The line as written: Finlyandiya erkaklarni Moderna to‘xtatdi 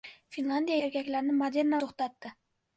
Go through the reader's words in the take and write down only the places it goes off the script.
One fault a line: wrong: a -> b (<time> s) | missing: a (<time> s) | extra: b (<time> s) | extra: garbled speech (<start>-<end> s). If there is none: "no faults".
no faults